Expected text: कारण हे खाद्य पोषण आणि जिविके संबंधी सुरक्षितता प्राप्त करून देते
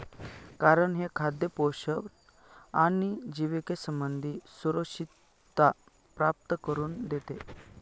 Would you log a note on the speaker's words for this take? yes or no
no